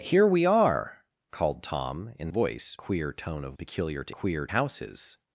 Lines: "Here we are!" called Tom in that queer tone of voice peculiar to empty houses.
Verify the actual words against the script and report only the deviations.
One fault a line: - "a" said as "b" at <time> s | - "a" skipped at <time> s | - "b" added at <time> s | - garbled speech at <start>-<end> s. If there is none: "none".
- "that" said as "voice" at 2.3 s
- "voice" skipped at 3.5 s
- "empty" said as "queer" at 4.1 s